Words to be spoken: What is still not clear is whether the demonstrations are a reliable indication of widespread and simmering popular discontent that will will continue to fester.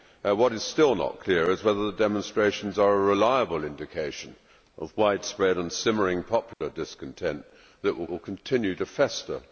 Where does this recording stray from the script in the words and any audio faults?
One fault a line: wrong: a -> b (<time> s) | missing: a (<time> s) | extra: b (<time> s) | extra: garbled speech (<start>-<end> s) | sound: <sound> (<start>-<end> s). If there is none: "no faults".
sound: dropout (6.5-6.6 s)